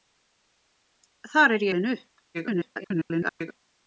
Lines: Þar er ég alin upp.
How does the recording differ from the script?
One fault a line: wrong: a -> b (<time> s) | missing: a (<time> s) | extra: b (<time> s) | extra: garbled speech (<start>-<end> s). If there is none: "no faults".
missing: ég (1.7 s)
extra: garbled speech (2.3-3.6 s)